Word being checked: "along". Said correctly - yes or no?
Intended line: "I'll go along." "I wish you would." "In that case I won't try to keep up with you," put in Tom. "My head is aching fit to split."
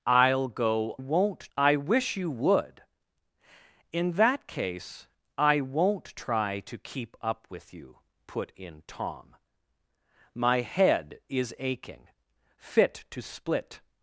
no